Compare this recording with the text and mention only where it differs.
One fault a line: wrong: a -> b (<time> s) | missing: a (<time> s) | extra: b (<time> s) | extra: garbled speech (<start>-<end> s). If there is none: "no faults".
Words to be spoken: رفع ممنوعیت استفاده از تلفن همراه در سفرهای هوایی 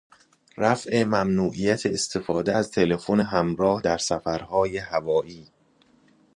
no faults